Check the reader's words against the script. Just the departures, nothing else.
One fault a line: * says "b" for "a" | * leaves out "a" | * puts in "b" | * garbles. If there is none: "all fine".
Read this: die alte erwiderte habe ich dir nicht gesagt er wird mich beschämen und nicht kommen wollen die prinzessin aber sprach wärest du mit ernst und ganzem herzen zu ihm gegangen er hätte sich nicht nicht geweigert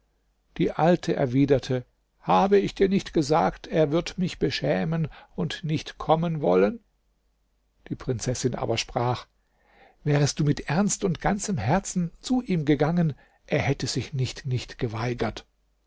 all fine